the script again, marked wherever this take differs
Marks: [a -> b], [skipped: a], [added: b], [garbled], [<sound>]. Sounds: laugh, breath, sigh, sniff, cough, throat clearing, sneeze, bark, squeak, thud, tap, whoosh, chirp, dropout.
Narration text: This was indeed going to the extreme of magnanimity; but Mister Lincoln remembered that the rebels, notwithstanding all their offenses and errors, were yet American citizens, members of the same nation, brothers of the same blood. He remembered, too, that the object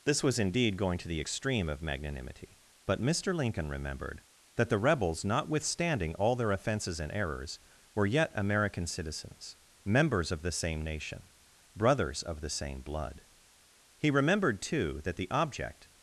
This was indeed going to the extreme of magnanimity; but Mister Lincoln remembered that the rebels, notwithstanding all their offenses and errors, were yet American citizens, members of the same nation, brothers of the same blood. He remembered, too, that the object